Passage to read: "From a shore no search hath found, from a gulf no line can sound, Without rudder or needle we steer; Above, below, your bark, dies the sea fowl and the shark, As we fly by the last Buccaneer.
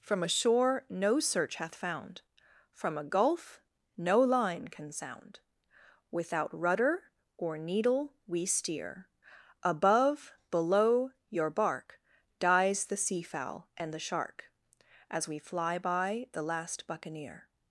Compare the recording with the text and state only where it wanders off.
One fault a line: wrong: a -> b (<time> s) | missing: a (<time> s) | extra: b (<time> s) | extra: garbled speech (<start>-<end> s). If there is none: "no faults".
no faults